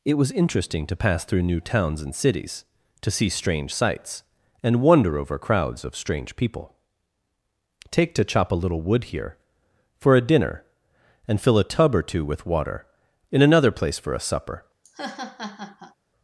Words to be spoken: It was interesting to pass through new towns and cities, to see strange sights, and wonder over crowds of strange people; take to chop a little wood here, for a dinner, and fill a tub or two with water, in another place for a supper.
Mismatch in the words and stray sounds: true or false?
true